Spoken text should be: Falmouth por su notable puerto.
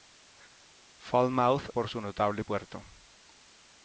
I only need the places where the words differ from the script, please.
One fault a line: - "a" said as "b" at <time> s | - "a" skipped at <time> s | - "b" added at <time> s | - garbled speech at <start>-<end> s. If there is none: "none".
none